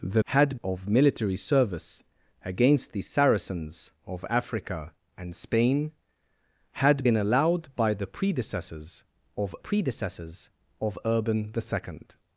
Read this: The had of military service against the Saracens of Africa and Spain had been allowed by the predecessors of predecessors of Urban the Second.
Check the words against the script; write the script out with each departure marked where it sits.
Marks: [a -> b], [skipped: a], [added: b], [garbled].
The had of military service against the Saracens of Africa and Spain had been allowed by the predecessors of predecessors of Urban the Second.